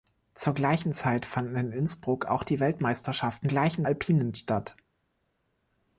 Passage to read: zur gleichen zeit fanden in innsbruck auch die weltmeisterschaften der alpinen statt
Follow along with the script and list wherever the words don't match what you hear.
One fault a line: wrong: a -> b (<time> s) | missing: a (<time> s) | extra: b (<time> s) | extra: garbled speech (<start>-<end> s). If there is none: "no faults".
wrong: der -> gleichen (3.5 s)